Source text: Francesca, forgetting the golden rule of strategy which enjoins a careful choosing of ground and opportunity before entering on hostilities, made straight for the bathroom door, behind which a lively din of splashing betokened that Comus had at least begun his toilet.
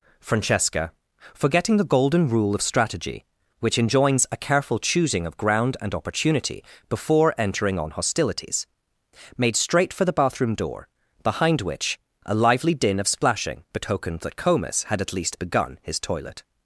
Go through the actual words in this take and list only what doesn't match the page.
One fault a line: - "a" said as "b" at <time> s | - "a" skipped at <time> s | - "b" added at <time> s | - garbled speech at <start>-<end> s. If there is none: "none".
none